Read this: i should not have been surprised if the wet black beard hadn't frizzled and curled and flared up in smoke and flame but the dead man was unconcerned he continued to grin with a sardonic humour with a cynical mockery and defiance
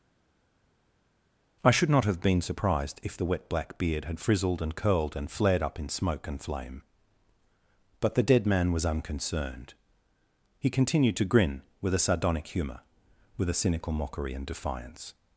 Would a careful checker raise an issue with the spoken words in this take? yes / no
yes